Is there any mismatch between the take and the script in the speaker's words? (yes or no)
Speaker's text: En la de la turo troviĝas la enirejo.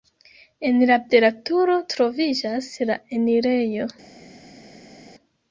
no